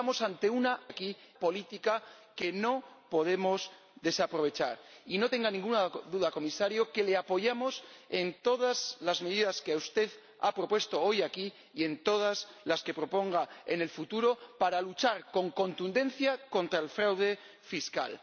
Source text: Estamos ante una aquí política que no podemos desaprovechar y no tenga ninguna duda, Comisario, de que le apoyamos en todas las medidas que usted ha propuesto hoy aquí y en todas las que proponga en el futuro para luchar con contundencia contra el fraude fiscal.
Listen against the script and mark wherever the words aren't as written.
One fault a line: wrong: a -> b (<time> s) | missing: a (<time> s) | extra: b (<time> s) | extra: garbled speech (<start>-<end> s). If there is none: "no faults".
no faults